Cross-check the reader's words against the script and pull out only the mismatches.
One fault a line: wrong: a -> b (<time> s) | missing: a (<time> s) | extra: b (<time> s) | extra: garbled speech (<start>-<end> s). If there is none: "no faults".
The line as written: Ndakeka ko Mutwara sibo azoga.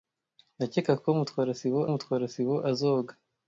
extra: Mutwara sibo (1.9 s)